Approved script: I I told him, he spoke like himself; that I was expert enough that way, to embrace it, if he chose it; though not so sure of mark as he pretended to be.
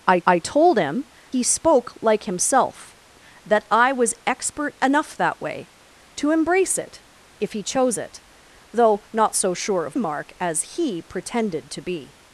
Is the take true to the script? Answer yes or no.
yes